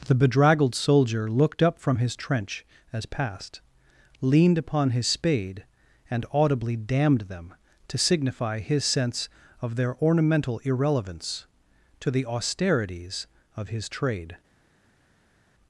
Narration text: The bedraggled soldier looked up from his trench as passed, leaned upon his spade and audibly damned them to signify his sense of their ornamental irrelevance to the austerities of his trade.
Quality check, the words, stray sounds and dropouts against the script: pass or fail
pass